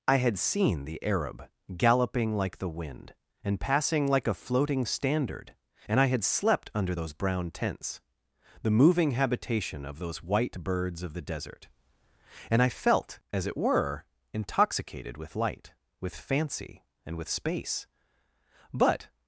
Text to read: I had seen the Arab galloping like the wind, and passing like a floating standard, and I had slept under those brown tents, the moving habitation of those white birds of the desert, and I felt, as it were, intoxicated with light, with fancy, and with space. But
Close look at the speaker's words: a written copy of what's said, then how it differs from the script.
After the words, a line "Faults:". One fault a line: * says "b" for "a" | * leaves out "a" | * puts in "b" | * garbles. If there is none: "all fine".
I had seen the Arab galloping like the wind, and passing like a floating standard, and I had slept under those brown tents, the moving habitation of those white birds of the desert, and I felt, as it were, intoxicated with light, with fancy, and with space. But
Faults:
all fine